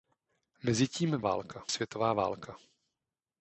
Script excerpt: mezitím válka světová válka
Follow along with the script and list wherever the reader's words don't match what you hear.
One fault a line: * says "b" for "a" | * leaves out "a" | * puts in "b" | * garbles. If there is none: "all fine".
all fine